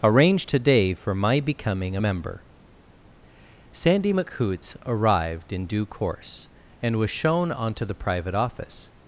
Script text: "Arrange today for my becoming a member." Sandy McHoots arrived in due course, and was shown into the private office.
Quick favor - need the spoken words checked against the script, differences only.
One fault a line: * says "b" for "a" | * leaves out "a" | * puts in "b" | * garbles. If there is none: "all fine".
* says "onto" for "into"